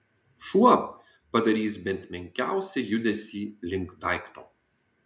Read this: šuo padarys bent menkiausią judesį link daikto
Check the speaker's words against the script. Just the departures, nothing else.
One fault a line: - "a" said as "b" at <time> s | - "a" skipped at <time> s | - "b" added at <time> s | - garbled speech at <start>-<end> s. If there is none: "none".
none